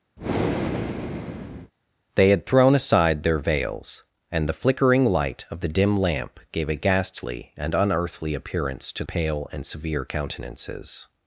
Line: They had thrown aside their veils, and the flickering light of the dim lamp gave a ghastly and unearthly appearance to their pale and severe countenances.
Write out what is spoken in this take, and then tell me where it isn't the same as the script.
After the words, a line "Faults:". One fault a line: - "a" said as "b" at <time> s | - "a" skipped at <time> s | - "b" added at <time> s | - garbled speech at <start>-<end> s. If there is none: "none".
They had thrown aside their veils, and the flickering light of the dim lamp gave a ghastly and unearthly appearance to pale and severe countenances.
Faults:
- "their" skipped at 9.0 s